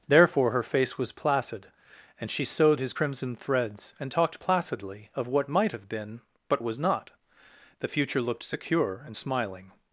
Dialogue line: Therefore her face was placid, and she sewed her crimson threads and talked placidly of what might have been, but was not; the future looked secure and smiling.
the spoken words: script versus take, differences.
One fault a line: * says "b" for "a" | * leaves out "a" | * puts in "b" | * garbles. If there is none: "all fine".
* says "his" for "her"